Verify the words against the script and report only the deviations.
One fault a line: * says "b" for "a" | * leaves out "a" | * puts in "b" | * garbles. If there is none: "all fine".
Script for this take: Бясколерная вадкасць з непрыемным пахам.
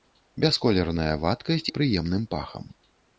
* leaves out "з"